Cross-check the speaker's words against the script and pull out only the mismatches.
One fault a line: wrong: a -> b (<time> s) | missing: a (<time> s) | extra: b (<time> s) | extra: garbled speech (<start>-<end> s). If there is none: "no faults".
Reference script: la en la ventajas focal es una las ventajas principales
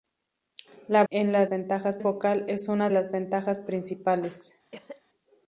no faults